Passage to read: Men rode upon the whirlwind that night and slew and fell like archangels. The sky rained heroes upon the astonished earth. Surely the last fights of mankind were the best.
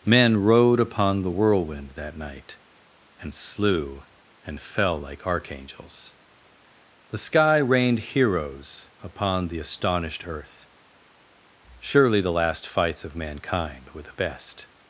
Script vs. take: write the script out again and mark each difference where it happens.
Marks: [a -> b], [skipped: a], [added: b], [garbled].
Men rode upon the whirlwind that night and slew and fell like archangels. The sky rained heroes upon the astonished earth. Surely the last fights of mankind were the best.